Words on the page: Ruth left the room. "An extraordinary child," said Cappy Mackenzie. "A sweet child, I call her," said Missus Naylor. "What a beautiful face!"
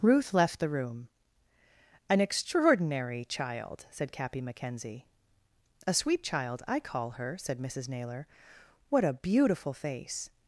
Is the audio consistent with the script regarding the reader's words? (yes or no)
yes